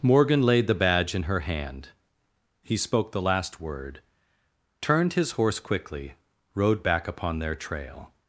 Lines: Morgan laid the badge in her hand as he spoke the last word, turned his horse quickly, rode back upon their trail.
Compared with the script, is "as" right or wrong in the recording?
wrong